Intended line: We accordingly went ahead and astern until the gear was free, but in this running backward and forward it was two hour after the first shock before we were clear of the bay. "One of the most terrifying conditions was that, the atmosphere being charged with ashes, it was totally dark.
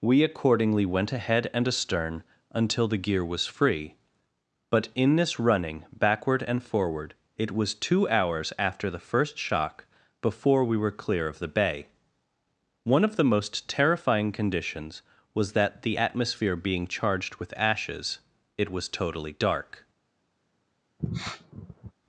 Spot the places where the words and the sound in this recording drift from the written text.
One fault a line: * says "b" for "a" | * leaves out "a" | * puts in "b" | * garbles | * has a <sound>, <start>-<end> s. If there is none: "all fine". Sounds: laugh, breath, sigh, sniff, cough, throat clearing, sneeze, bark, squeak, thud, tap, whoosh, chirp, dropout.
* says "hours" for "hour"
* has a sniff, 21.0-21.9 s